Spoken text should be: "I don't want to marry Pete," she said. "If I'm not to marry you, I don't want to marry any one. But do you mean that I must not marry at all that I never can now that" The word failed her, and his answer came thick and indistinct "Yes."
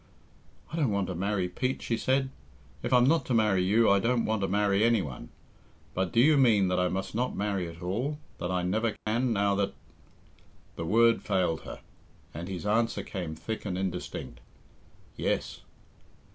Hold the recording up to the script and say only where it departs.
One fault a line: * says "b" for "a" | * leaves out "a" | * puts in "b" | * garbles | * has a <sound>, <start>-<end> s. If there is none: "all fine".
* has a dropout, 9.0-9.1 s